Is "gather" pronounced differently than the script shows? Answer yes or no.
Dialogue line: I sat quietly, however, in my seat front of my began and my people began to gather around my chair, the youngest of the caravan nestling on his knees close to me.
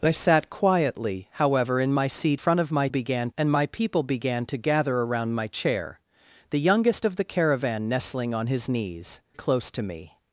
no